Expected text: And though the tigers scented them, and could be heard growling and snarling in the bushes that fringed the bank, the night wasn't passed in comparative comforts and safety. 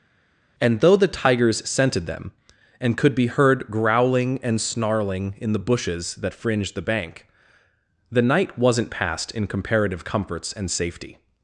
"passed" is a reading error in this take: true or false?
false